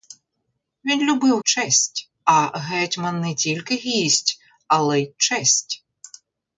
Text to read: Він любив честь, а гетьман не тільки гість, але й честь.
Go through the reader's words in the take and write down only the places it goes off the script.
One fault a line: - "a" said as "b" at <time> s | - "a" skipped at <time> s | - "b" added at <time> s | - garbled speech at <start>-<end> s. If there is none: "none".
none